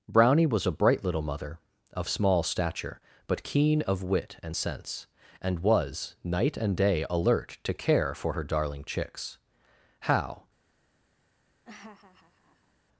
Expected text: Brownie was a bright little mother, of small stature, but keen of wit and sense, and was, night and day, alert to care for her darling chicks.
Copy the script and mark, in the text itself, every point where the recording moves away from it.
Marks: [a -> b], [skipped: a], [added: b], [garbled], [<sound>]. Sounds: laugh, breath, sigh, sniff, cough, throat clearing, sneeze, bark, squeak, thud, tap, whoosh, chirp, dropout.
Brownie was a bright little mother, of small stature, but keen of wit and sense, and was, night and day, alert to care for her darling chicks. [added: How] [laugh]